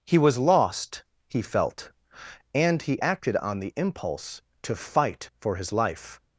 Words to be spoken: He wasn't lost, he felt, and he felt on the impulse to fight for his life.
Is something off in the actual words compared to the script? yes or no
yes